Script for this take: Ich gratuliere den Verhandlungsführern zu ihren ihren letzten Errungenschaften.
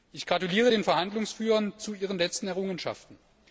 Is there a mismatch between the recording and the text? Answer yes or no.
yes